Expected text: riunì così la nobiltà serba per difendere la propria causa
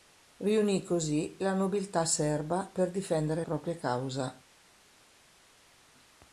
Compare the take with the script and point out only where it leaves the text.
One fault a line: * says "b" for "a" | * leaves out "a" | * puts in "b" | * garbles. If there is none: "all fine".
* leaves out "la"